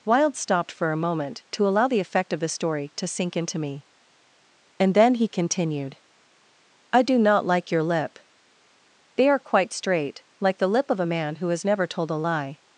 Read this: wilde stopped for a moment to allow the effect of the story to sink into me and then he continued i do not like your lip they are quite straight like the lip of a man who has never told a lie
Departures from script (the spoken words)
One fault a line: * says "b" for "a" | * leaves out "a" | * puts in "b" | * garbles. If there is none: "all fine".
all fine